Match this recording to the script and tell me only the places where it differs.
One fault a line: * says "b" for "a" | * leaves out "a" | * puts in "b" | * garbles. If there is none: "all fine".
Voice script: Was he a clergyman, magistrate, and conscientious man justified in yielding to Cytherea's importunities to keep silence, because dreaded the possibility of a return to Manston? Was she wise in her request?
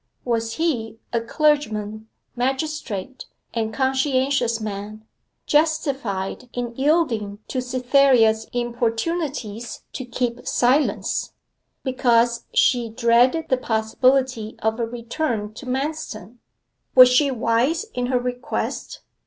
* puts in "she"